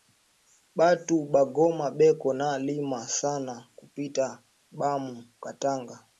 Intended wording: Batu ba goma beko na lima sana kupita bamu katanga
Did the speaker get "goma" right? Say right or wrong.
right